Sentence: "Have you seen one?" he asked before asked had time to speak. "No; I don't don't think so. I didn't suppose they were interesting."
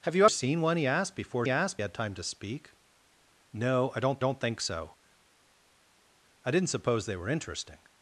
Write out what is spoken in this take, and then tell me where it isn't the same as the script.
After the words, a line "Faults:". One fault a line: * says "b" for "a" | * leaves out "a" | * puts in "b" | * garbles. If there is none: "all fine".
"Have you seen one?" he asked before asked had time to speak. "No; I don't don't think so. I didn't suppose they were interesting."
Faults:
all fine